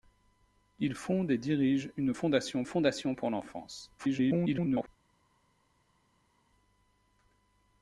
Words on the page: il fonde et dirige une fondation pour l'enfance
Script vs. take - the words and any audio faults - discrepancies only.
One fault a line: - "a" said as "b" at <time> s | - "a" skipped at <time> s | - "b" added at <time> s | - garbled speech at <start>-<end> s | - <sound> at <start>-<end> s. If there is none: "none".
- "fondation" added at 2.6 s
- garbled speech at 4.0-4.9 s